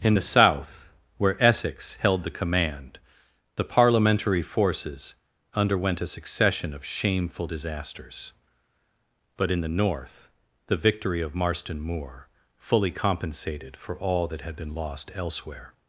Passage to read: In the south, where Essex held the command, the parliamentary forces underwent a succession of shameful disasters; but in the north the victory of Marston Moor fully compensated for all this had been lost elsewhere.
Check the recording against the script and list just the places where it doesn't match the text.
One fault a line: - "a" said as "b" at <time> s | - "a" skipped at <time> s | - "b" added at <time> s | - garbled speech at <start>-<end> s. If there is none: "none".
- "this" said as "that" at 14.3 s